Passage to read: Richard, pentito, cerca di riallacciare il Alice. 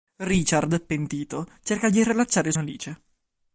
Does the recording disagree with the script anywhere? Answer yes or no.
no